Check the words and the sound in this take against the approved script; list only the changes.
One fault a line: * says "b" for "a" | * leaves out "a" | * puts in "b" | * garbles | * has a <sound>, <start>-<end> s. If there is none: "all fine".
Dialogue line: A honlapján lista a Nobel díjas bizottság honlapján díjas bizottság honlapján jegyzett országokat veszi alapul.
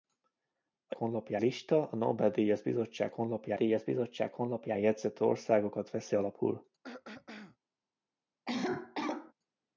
* has a throat clearing, 6.8-7.6 s
* has a cough, 8.5-9.3 s